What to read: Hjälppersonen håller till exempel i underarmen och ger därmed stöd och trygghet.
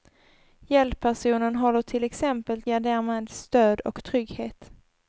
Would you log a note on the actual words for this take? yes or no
yes